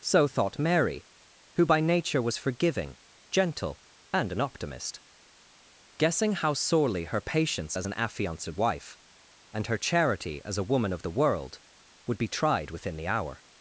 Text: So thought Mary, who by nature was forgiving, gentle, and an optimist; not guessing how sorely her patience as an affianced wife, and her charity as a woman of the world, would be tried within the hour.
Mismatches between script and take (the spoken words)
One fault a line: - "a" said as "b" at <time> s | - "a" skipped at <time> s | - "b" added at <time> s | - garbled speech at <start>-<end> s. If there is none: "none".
- "not" skipped at 5.0 s